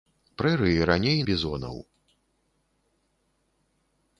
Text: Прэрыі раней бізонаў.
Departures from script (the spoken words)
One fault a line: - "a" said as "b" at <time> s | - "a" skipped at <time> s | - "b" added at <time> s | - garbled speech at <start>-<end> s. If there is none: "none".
none